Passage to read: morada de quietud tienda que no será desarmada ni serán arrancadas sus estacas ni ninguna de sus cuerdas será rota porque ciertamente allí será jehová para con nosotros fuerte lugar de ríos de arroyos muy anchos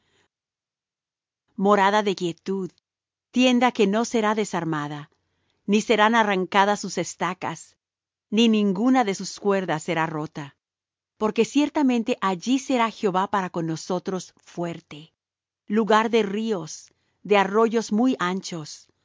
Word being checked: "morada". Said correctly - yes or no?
yes